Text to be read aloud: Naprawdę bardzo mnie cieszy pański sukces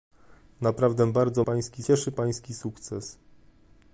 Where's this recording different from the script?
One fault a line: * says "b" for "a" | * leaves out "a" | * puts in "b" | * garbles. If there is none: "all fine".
* says "pański" for "mnie"